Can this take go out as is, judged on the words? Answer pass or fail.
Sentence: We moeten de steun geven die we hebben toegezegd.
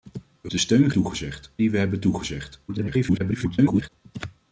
fail